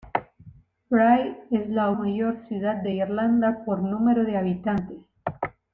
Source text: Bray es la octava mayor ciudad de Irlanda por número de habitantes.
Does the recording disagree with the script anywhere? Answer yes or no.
yes